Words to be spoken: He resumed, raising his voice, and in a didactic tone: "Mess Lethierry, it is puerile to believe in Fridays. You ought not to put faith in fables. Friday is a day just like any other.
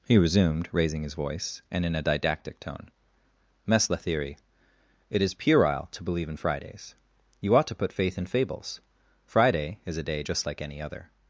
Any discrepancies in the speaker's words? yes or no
yes